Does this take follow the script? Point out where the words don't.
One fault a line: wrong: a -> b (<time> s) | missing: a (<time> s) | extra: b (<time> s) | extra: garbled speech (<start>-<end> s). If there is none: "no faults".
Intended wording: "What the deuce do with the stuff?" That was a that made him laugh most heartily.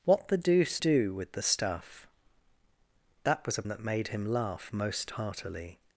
no faults